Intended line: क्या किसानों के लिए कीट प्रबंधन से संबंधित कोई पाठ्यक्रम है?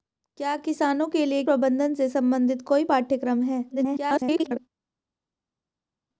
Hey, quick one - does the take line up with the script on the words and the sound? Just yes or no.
no